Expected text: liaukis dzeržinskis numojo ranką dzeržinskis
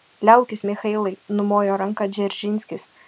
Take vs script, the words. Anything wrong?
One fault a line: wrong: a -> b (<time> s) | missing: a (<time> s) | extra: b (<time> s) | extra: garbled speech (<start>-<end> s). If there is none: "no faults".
wrong: dzeržinskis -> michailai (0.7 s)